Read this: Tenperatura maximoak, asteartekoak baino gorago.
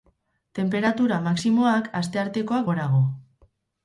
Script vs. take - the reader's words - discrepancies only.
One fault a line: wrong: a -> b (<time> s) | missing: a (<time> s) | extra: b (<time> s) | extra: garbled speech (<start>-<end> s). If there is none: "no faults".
missing: baino (2.7 s)